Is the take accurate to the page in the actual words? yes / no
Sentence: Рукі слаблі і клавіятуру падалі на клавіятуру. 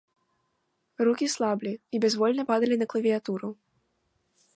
no